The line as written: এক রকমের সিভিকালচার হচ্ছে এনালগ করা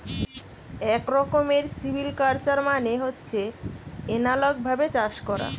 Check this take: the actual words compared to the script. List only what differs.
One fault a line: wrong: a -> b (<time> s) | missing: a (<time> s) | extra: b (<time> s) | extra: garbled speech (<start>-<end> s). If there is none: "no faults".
extra: মানে (2.7 s)
extra: ভাবে চাষ (4.7 s)